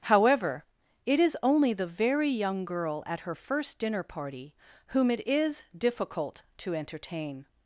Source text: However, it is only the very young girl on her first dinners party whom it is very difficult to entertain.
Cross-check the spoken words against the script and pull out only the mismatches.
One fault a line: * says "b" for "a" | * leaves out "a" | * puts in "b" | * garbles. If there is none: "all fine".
* says "at" for "on"
* says "dinner" for "dinners"
* leaves out "very"